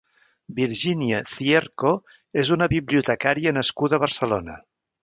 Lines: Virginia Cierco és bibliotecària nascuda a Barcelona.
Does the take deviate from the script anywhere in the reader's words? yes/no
yes